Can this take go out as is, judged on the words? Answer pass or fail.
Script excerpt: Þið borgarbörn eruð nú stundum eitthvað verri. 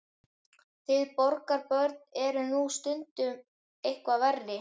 pass